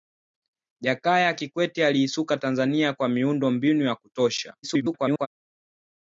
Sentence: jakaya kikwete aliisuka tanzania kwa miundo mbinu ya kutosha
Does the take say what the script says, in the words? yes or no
no